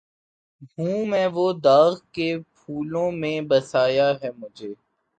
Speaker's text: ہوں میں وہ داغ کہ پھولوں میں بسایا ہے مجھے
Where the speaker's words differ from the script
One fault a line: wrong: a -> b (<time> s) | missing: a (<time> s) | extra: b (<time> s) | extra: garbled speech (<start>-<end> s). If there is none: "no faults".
no faults